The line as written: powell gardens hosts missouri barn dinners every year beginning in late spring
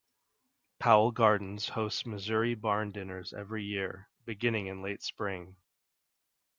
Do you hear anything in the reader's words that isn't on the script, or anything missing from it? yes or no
no